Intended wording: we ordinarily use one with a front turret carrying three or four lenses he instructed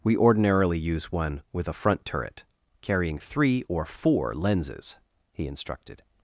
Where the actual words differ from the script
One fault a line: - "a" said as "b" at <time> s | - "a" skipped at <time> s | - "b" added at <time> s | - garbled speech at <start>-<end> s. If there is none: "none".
none